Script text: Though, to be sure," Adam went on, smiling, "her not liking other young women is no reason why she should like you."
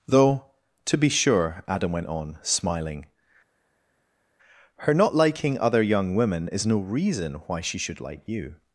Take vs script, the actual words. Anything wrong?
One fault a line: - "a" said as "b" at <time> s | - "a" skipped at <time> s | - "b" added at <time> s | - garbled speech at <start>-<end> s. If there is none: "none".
none